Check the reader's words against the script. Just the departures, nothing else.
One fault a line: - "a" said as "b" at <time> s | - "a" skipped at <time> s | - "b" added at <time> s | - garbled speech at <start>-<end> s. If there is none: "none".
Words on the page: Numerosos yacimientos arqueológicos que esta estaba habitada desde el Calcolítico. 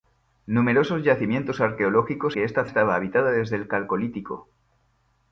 none